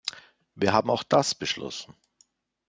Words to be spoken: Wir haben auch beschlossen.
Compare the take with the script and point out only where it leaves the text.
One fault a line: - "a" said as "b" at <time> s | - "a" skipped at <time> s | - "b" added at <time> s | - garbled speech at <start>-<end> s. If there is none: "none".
- "das" added at 1.0 s